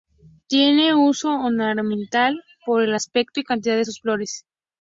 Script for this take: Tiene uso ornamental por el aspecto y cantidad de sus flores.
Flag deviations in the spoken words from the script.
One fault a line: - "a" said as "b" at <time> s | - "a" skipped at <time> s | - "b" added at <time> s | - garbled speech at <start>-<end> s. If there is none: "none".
none